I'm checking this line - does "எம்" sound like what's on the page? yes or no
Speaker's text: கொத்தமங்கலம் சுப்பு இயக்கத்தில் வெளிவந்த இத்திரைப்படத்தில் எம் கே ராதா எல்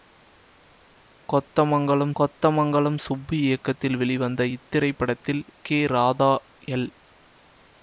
no